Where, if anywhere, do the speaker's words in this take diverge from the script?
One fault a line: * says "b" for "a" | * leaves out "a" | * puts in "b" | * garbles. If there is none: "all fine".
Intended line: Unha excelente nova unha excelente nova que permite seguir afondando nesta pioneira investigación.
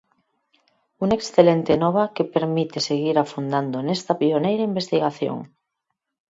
* leaves out "unha excelente nova"